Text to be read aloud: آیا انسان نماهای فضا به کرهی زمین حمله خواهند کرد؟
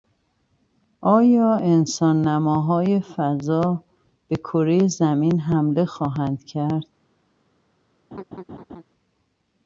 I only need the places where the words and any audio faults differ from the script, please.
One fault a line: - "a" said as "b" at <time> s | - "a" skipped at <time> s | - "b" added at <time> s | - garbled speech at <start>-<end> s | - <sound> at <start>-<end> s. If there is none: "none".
- laugh at 8.1-8.8 s